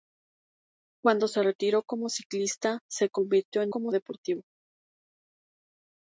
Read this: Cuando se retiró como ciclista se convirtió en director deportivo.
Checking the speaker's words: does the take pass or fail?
fail